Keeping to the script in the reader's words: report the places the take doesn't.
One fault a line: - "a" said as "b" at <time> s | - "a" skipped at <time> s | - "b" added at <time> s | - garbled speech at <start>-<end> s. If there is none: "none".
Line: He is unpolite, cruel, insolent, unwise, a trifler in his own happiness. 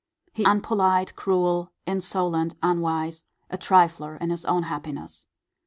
- "is" skipped at 0.5 s